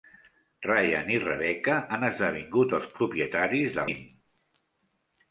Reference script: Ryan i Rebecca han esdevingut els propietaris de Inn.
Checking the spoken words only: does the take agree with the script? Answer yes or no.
yes